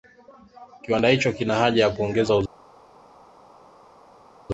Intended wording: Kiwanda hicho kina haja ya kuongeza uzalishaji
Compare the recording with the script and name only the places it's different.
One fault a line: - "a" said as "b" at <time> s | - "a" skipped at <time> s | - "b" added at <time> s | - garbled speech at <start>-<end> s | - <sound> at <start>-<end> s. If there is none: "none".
none